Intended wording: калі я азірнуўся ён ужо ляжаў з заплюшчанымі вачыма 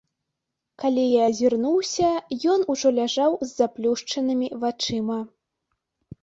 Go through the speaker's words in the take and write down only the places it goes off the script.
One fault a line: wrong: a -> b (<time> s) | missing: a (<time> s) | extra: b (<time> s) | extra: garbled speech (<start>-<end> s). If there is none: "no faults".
no faults